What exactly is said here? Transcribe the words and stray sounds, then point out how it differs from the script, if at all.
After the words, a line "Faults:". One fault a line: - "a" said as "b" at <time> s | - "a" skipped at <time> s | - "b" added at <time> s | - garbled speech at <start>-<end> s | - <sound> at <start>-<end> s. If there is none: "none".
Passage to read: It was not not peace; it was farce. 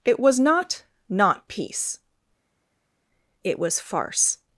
It was not not peace; it was farce.
Faults:
none